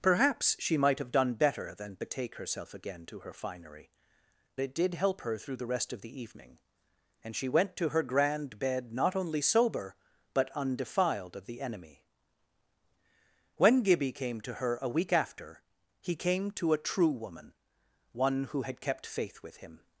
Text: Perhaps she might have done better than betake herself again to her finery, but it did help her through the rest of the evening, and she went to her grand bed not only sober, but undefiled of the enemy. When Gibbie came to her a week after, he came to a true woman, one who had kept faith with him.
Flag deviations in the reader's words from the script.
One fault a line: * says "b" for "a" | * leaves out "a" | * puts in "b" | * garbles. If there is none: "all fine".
* leaves out "but"